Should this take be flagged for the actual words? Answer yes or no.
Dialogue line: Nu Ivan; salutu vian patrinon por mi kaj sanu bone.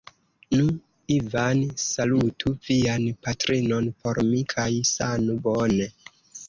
no